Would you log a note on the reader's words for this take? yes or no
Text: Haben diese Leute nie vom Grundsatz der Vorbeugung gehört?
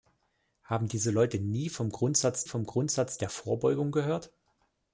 yes